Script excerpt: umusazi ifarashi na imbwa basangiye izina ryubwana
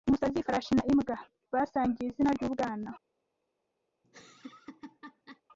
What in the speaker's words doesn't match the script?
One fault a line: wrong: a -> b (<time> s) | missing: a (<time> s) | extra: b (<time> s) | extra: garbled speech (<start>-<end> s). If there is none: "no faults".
no faults